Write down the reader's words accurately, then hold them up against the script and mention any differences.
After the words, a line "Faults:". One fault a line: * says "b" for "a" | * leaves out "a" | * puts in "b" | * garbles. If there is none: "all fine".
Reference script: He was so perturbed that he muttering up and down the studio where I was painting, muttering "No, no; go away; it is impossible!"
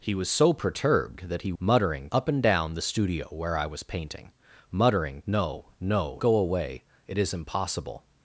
He was so perturbed that he muttering up and down the studio where I was painting, muttering "No, no; go away; it is impossible!"
Faults:
all fine